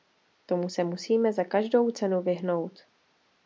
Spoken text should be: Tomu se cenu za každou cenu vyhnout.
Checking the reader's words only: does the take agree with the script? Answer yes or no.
no